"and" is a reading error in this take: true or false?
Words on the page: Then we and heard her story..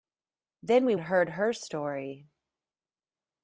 false